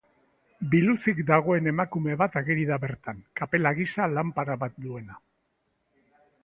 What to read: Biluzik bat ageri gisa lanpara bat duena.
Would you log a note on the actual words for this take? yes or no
yes